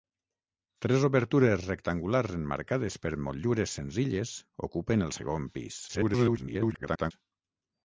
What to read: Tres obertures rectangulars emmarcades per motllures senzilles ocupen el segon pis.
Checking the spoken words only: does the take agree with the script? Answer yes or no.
no